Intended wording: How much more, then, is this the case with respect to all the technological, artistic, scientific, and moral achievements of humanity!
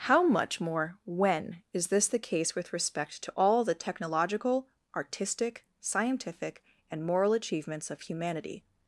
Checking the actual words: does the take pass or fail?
fail